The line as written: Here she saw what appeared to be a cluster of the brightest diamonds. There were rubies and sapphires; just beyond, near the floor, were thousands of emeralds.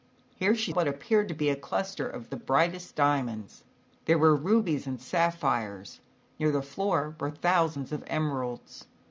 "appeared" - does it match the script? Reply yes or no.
yes